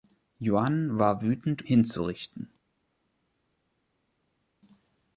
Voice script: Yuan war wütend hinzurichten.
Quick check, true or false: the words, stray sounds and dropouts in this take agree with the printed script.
true